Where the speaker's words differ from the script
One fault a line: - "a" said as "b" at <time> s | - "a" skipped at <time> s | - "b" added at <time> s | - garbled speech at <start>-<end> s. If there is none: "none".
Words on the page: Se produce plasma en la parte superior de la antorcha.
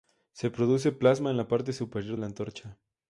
- "de" skipped at 2.2 s